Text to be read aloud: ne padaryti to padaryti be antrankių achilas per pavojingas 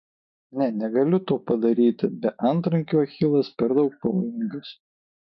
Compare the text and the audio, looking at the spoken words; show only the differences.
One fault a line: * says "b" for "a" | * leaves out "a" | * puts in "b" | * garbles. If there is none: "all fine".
* says "negaliu" for "padaryti"
* puts in "daug"